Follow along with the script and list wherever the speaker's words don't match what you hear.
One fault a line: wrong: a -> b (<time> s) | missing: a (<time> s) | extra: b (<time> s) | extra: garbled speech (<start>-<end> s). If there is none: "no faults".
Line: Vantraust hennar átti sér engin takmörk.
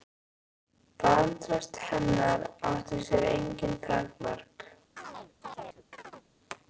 no faults